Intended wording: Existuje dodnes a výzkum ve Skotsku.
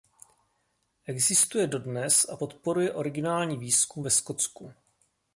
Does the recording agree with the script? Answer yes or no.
no